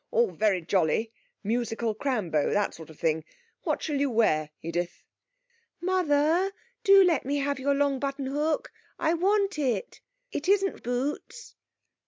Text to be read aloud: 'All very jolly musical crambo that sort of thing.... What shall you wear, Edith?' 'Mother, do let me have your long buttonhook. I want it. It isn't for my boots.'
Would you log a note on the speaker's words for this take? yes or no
yes